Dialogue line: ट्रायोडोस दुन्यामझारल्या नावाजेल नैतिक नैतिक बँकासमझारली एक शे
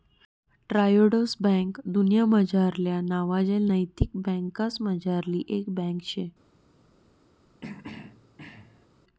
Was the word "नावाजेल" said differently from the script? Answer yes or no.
no